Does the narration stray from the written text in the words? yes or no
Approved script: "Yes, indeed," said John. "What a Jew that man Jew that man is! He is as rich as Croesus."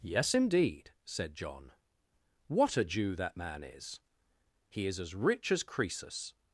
yes